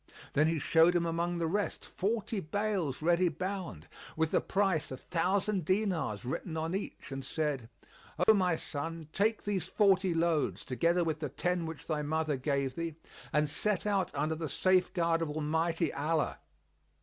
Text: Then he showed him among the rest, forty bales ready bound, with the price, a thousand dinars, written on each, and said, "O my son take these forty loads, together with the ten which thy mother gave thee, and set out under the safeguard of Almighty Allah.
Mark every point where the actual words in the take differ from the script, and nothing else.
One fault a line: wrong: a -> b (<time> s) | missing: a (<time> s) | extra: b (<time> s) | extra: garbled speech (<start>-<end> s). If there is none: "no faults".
no faults